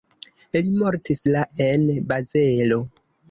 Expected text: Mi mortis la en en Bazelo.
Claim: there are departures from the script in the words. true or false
true